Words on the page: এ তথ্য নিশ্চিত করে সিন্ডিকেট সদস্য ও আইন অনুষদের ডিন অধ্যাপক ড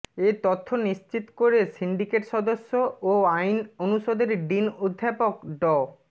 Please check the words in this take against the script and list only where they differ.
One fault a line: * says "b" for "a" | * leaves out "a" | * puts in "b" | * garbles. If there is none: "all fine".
all fine